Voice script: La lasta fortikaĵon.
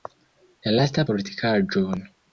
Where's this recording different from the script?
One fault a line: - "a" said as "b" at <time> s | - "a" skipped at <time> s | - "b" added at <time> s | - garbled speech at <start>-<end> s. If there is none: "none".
none